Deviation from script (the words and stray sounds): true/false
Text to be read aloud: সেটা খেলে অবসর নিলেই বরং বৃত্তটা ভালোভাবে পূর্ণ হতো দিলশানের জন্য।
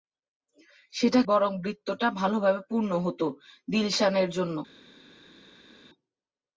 true